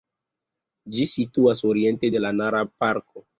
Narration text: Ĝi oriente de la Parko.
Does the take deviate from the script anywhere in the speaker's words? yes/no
yes